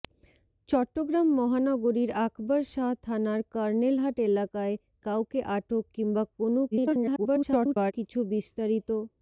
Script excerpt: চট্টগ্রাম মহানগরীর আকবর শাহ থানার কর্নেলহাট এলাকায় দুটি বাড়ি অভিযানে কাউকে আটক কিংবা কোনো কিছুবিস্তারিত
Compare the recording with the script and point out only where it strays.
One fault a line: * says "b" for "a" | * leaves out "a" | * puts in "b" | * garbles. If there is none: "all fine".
* leaves out "দুটি বাড়ি অভিযানে"
* garbles